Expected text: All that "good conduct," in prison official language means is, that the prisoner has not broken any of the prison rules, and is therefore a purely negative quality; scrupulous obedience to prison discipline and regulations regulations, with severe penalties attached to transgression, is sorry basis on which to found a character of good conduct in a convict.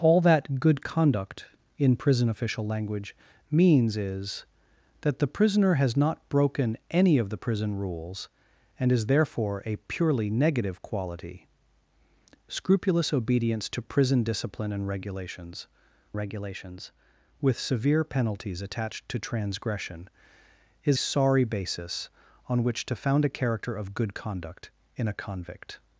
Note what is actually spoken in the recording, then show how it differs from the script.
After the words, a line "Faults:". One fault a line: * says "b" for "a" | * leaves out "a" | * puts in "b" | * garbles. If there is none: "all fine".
All that "good conduct," in prison official language means is, that the prisoner has not broken any of the prison rules, and is therefore a purely negative quality; scrupulous obedience to prison discipline and regulations regulations, with severe penalties attached to transgression, is sorry basis on which to found a character of good conduct in a convict.
Faults:
all fine